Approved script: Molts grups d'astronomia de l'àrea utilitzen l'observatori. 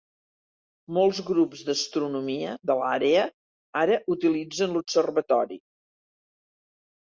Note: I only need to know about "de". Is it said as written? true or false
true